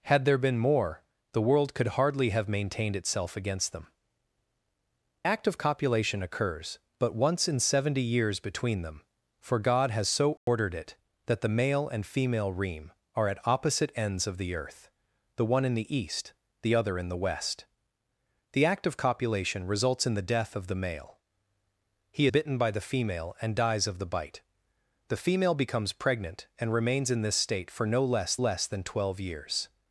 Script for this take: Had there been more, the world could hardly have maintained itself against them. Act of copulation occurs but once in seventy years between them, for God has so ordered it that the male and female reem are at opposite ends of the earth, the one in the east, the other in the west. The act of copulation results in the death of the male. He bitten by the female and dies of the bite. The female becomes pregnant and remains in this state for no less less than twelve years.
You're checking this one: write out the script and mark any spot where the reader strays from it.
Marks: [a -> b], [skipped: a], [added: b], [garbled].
Had there been more, the world could hardly have maintained itself against them. Act of copulation occurs but once in seventy years between them, for God has so ordered it that the male and female reem are at opposite ends of the earth, the one in the east, the other in the west. The act of copulation results in the death of the male. He bitten by the female and dies of the bite. The female becomes pregnant and remains in this state for no less less than twelve years.